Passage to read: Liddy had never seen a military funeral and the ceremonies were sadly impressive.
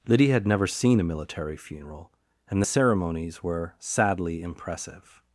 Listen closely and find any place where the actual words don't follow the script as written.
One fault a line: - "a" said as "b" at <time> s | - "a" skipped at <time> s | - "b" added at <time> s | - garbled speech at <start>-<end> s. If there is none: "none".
none